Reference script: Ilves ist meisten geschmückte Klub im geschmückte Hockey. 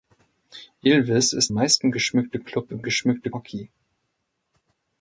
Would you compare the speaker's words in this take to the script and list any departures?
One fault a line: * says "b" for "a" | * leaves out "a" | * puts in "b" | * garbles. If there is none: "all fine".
all fine